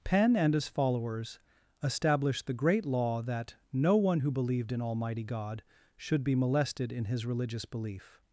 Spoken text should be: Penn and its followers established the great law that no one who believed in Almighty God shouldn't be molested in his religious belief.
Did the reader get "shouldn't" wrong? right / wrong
wrong